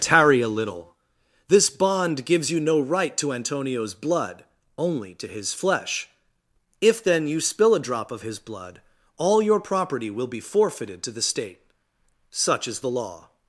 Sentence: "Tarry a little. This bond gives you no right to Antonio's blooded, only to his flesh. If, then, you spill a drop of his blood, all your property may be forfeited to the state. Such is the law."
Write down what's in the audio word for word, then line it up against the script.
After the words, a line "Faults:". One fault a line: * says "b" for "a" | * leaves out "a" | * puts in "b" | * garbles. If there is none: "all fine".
"Tarry a little. This bond gives you no right to Antonio's blood, only to his flesh. If, then, you spill a drop of his blood, all your property will be forfeited to the state. Such is the law."
Faults:
* says "blood" for "blooded"
* says "will" for "may"